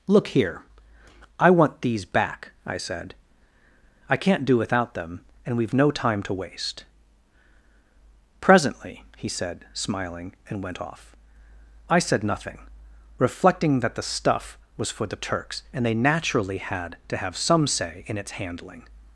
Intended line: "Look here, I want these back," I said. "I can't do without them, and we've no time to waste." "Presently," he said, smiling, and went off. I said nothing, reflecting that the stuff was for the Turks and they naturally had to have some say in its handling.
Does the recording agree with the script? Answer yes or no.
yes